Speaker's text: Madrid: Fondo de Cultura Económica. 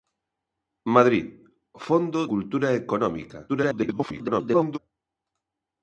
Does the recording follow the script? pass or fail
fail